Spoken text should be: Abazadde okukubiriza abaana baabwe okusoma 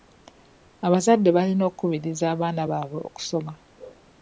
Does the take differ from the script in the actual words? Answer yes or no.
yes